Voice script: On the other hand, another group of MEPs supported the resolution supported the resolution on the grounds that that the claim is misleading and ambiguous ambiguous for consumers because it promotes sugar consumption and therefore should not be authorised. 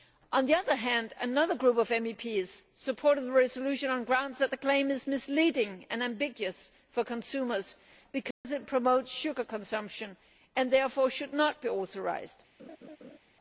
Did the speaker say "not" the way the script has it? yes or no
yes